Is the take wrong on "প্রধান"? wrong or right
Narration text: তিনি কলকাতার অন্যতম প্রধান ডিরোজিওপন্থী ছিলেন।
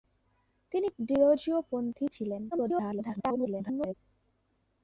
wrong